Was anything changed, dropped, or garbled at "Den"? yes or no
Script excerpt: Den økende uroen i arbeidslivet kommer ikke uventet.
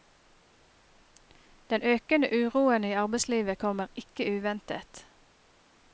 no